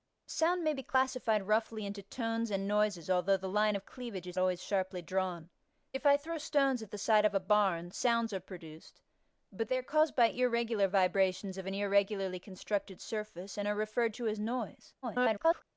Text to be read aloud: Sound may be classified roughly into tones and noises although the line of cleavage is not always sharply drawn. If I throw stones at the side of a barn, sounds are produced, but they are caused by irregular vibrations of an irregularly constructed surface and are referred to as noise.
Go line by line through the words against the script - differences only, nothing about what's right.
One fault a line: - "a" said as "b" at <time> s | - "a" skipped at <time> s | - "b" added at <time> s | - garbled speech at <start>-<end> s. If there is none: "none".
- "not" skipped at 4.4 s
- garbled speech at 15.0-15.6 s